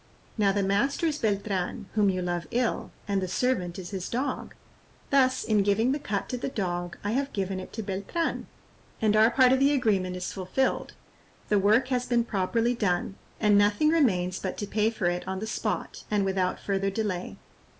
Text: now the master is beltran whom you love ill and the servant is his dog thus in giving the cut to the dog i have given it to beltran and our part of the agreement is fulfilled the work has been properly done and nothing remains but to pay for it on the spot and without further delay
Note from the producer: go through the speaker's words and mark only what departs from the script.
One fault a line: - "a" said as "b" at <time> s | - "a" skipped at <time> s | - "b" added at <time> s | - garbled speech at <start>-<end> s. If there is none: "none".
none